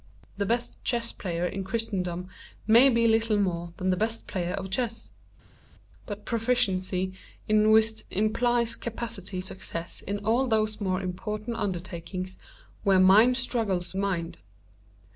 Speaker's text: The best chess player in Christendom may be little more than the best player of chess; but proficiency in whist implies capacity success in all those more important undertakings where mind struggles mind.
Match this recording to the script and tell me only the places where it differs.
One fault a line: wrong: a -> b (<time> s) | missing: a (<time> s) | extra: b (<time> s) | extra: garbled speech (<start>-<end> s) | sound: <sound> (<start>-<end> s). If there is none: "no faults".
no faults